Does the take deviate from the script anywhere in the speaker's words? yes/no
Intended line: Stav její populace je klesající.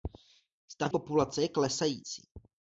yes